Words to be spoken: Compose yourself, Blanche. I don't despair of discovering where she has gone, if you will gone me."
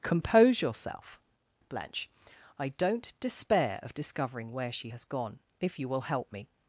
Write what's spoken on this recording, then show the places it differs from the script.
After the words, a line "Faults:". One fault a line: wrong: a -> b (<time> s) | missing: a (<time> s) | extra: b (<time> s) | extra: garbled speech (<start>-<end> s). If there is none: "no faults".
Compose yourself, Blanche. I don't despair of discovering where she has gone, if you will help me."
Faults:
wrong: gone -> help (6.0 s)